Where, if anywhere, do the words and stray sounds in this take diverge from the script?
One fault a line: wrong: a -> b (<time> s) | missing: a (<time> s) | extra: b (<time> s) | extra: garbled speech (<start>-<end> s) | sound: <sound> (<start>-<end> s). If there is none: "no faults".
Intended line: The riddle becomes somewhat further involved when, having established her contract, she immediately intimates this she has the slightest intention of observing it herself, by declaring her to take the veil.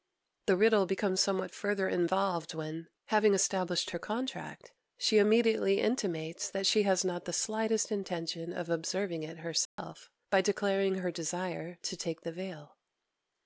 wrong: this -> that (6.5 s)
extra: not (7.0 s)
sound: dropout (9.7-9.8 s)
extra: desire (11.1 s)